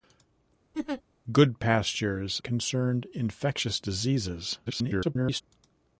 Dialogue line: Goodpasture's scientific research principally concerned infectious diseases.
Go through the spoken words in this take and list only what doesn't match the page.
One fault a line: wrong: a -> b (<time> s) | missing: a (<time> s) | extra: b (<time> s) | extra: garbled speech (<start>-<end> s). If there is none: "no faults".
missing: scientific research principally (2.4 s)
extra: garbled speech (4.7-5.4 s)